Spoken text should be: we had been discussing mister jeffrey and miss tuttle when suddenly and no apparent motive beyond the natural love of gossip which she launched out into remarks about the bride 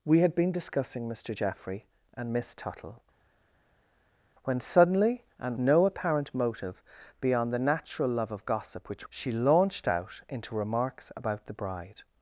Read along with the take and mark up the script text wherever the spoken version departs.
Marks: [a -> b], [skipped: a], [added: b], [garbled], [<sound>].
we had been discussing mister jeffrey and miss tuttle when suddenly and no apparent motive beyond the natural love of gossip which she launched out into remarks about the bride